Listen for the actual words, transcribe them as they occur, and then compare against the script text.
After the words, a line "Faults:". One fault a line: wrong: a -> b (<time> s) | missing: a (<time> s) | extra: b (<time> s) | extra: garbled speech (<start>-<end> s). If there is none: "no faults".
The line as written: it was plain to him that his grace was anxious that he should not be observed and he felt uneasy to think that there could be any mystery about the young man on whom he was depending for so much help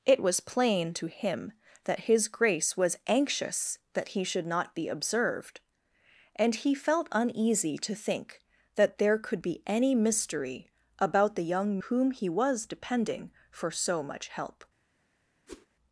it was plain to him that his grace was anxious that he should not be observed and he felt uneasy to think that there could be any mystery about the young whom he was depending for so much help
Faults:
missing: man on (11.8 s)